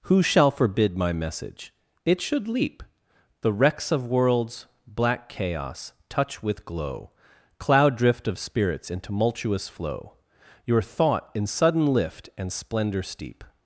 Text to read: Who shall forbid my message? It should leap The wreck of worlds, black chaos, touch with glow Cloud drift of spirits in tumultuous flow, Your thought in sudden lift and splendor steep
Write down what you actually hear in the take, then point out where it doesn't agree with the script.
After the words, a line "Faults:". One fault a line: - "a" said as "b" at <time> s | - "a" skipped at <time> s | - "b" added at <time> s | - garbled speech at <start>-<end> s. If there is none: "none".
Who shall forbid my message? It should leap The wrecks of worlds, black chaos, touch with glow Cloud drift of spirits in tumultuous flow, Your thought in sudden lift and splendor steep
Faults:
- "wreck" said as "wrecks" at 3.5 s